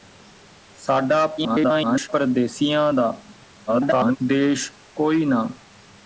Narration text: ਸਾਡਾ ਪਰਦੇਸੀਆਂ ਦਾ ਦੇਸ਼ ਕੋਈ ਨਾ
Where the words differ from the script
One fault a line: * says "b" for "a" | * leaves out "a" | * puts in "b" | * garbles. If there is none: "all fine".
* garbles
* garbles